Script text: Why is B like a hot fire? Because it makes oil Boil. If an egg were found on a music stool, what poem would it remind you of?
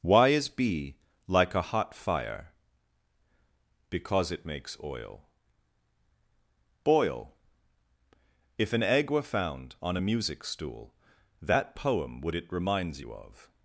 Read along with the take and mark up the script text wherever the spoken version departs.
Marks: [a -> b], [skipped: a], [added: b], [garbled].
Why is B like a hot fire? Because it makes oil Boil. If an egg were found on a music stool, [what -> that] poem would it [remind -> reminds] you of?